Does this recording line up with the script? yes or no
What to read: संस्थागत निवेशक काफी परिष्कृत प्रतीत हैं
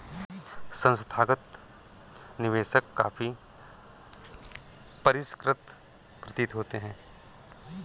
no